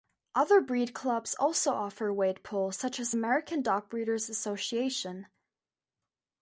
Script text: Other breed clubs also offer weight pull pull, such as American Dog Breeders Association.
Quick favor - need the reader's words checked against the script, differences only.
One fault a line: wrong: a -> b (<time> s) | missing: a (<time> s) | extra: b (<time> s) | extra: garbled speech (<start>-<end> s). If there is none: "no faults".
missing: pull (2.7 s)